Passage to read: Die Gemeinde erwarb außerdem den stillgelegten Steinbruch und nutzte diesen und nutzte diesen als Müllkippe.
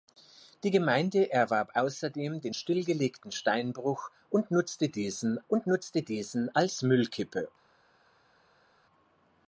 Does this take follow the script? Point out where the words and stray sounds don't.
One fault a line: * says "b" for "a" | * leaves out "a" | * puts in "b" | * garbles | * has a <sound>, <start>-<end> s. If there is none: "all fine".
all fine